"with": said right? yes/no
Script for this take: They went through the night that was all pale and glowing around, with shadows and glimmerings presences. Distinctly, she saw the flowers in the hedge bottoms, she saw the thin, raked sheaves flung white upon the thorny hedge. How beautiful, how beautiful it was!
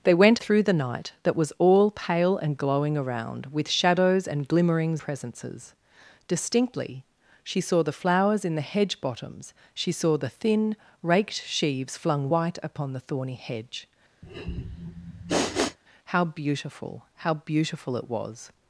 yes